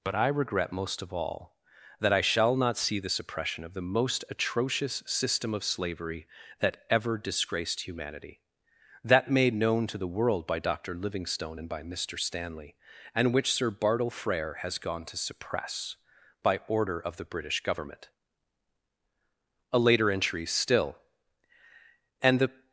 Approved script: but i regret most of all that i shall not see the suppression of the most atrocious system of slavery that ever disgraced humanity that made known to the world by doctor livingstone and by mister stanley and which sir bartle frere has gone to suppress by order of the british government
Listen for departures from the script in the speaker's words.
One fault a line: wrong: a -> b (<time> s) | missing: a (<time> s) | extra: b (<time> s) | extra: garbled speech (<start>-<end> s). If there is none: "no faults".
extra: a later entry still and the (19.7 s)